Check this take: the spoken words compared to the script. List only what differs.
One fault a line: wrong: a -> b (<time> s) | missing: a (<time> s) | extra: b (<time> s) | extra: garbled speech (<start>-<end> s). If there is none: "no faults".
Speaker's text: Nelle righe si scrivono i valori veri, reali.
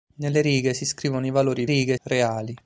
wrong: veri -> righe (1.6 s)